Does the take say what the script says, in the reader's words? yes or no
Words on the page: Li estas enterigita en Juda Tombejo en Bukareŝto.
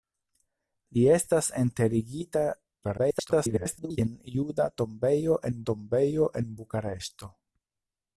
no